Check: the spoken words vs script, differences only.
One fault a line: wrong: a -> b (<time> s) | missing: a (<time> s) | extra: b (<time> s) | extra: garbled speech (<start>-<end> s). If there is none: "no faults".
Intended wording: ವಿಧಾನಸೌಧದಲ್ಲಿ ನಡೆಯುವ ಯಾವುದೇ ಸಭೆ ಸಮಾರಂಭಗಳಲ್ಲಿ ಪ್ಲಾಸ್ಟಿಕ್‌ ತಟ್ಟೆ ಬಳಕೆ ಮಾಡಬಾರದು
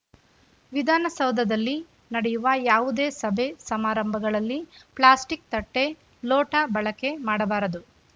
extra: ಲೋಟ (6.2 s)